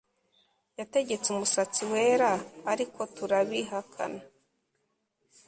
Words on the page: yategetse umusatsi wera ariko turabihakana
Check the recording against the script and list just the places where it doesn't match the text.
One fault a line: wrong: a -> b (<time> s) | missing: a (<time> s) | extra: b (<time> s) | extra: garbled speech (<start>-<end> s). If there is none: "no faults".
no faults